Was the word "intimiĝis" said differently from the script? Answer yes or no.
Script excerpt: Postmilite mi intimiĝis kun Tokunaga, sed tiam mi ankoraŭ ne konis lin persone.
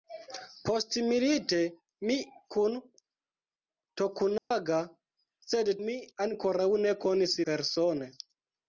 yes